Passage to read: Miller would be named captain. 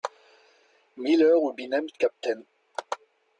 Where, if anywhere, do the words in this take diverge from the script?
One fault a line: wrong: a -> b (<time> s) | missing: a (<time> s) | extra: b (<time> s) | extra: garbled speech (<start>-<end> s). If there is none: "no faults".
no faults